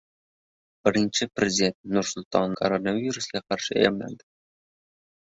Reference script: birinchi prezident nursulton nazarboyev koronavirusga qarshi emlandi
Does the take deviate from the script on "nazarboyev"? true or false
true